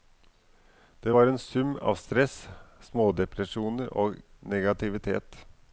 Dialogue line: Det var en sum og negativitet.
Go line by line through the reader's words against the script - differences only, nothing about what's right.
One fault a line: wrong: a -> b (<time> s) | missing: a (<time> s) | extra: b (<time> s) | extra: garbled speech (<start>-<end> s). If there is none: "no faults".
extra: av stress smådepresjoner (1.8 s)